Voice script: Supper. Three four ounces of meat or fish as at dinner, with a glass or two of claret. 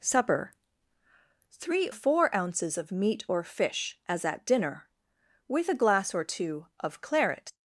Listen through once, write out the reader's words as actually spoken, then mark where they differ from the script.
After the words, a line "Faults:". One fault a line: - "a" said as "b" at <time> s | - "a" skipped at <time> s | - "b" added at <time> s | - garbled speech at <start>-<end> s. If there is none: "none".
Supper. Three four ounces of meat or fish as at dinner, with a glass or two of claret.
Faults:
none